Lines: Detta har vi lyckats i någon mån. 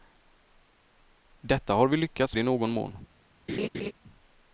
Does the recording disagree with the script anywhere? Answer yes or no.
no